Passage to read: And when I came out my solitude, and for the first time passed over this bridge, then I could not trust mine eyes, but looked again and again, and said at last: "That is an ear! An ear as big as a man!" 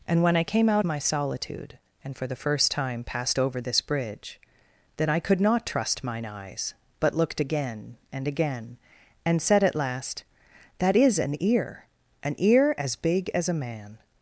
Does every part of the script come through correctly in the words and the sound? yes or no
yes